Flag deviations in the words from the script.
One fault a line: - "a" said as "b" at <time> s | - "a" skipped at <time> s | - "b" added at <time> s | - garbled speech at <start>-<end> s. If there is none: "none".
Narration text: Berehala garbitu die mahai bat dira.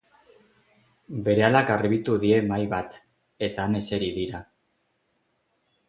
- "eta han eseri" added at 3.5 s